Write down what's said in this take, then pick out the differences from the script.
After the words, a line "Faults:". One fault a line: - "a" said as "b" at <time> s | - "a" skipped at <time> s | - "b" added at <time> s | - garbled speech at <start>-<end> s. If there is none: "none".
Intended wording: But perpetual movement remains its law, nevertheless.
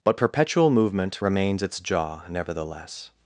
But perpetual movement remains its jaw, nevertheless.
Faults:
- "law" said as "jaw" at 1.8 s